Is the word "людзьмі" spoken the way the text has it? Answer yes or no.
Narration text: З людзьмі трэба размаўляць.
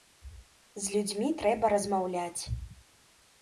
yes